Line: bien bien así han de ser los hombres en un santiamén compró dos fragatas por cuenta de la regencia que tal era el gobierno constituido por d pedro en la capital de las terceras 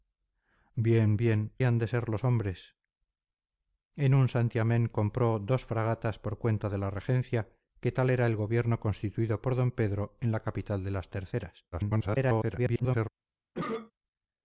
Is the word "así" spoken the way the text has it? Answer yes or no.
no